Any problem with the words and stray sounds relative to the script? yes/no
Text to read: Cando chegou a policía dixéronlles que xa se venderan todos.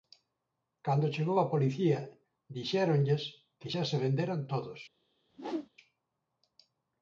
yes